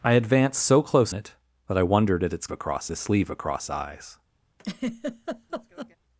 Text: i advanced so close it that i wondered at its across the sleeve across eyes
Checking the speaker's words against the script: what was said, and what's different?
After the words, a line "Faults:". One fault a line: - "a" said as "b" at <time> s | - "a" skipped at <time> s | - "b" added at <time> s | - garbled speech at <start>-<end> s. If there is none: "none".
i advanced so close it that i wondered at its across the sleeve across eyes
Faults:
none